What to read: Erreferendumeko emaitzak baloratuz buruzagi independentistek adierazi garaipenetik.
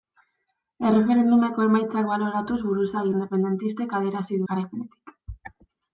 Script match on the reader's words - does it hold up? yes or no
yes